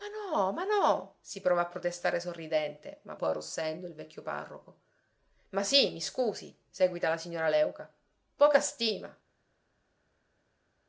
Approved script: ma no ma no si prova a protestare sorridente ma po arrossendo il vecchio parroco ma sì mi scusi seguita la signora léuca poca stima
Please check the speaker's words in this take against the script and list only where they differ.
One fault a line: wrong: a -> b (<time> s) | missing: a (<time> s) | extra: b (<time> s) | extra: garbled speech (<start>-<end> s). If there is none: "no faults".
no faults